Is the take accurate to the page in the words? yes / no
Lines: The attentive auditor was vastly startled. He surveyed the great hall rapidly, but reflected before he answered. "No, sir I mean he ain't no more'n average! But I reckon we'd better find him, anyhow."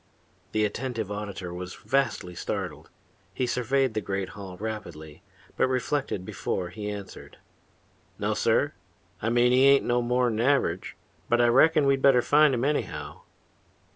yes